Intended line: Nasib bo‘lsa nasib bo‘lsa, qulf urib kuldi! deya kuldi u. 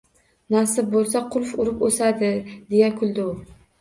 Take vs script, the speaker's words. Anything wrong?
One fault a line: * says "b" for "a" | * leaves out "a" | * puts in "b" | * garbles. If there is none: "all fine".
* leaves out "nasib bo‘lsa"
* says "o‘sadi" for "kuldi"